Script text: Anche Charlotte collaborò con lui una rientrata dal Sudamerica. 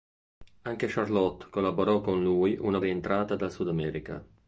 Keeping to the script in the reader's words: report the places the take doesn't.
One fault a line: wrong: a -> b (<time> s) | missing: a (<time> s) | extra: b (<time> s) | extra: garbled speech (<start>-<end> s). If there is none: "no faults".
no faults